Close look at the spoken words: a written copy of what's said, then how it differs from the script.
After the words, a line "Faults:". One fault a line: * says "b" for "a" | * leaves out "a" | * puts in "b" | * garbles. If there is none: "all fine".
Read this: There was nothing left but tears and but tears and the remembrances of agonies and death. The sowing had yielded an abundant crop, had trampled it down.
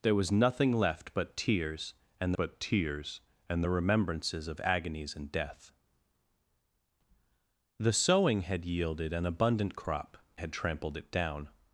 There was nothing left but tears and but tears and the remembrances of agonies and death. The sowing had yielded an abundant crop, had trampled it down.
Faults:
all fine